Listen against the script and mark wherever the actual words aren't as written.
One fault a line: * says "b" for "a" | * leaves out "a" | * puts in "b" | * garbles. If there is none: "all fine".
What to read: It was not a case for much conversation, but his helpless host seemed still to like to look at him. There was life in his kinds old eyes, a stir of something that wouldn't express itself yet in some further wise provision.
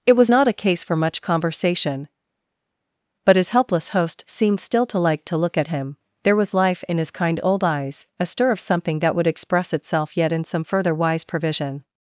* says "kind" for "kinds"
* says "would" for "wouldn't"